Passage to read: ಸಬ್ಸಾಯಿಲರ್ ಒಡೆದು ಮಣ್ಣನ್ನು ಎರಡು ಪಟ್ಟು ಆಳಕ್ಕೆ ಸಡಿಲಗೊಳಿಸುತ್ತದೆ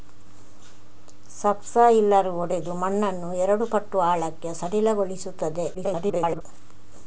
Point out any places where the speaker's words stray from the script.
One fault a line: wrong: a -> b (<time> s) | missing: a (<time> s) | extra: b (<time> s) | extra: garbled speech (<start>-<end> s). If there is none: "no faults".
extra: garbled speech (5.7-6.4 s)